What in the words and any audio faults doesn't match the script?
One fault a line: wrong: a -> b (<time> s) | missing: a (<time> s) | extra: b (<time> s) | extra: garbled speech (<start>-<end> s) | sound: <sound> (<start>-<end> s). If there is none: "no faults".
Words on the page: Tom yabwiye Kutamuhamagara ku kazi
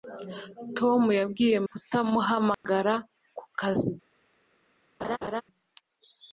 sound: dropout (2.5-2.6 s)
sound: laugh (5.0-5.4 s)